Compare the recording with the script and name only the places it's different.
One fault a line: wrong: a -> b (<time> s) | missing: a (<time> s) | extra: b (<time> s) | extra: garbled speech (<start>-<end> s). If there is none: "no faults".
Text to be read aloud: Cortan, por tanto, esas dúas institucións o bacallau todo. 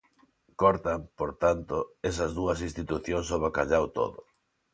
no faults